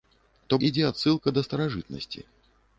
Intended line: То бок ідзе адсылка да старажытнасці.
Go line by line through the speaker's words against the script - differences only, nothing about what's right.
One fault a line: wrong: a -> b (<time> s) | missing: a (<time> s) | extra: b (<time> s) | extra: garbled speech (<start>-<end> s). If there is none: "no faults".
missing: бок (0.6 s)